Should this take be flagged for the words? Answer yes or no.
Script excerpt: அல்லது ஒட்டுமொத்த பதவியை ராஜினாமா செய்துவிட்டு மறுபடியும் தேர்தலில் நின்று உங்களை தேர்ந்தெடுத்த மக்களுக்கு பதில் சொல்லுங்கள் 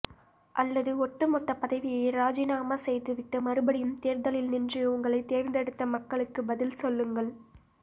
no